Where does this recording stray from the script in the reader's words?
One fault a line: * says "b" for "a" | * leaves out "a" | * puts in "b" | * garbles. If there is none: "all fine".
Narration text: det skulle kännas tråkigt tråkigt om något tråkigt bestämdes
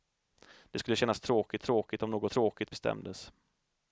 all fine